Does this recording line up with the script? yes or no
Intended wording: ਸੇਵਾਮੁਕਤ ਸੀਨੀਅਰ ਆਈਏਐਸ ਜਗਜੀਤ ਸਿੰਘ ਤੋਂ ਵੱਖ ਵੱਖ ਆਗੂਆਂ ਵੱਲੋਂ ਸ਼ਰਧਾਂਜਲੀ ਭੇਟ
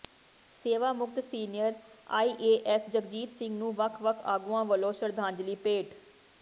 no